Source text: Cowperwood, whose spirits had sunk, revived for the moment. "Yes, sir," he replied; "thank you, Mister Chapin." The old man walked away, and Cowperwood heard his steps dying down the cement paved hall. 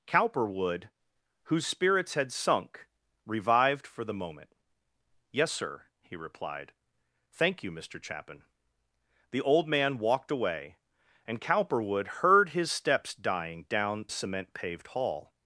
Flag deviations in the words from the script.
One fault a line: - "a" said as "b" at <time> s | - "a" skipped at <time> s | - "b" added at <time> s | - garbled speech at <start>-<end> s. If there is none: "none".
- "the" skipped at 14.1 s